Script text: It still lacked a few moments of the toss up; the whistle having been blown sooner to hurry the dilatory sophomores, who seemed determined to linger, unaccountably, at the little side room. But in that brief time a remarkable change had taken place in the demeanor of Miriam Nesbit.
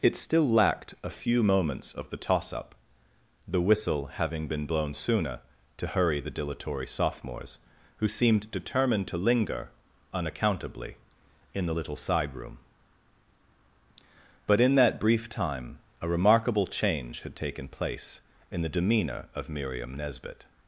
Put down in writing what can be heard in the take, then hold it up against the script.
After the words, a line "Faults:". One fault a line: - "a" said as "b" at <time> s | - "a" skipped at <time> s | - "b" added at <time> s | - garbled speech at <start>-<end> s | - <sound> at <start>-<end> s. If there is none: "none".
It still lacked a few moments of the toss up; the whistle having been blown sooner to hurry the dilatory sophomores, who seemed determined to linger, unaccountably, in the little side room. But in that brief time a remarkable change had taken place in the demeanor of Miriam Nesbit.
Faults:
- "at" said as "in" at 11.5 s